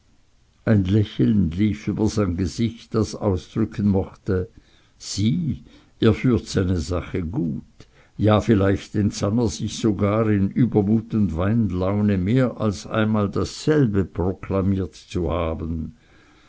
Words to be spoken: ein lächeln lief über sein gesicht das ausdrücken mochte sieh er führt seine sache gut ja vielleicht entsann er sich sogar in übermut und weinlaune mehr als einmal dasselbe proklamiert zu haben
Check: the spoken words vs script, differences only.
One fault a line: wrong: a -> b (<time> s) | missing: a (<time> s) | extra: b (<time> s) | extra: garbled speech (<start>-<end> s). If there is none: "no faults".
no faults